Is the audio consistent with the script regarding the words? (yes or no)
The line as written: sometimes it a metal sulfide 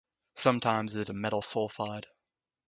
yes